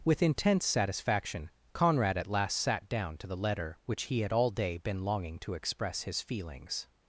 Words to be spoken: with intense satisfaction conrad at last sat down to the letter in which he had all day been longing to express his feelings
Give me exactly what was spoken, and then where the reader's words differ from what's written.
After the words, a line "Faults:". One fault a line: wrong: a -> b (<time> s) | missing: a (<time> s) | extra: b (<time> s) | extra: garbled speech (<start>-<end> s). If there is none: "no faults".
with intense satisfaction conrad at last sat down to the letter which he had all day been longing to express his feelings
Faults:
missing: in (3.8 s)